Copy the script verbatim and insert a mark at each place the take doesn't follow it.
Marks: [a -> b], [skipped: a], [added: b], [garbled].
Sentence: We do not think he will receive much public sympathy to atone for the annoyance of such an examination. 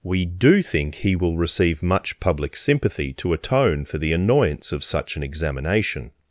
We do [skipped: not] think he will receive much public sympathy to atone for the annoyance of such an examination.